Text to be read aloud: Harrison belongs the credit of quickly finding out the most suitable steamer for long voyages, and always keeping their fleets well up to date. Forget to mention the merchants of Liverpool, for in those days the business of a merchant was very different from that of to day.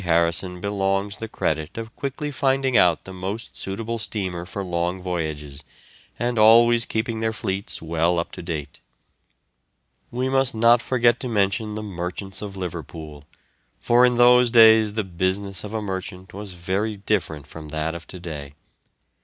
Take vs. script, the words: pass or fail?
fail